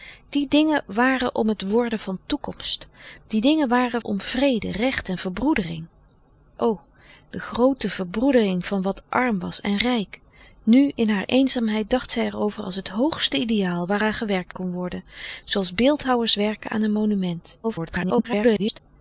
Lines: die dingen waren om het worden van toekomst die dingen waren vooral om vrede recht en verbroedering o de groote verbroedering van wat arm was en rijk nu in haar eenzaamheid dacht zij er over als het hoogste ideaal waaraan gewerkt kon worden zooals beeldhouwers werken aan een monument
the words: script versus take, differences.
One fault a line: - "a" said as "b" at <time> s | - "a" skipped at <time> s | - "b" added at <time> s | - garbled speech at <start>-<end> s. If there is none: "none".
- "vooral" skipped at 4.0 s
- garbled speech at 17.6-18.8 s